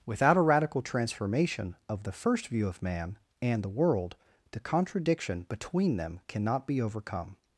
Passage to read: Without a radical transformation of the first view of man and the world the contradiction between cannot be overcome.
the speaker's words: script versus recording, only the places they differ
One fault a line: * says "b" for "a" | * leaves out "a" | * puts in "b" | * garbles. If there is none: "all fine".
* puts in "them"